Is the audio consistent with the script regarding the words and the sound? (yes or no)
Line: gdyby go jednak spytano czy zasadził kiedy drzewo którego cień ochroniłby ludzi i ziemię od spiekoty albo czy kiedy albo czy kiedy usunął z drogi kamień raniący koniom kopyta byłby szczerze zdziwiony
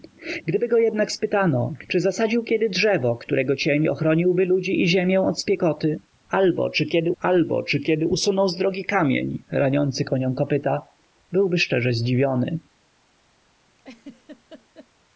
no